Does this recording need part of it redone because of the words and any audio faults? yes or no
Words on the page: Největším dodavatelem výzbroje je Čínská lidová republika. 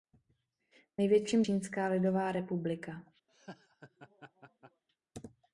yes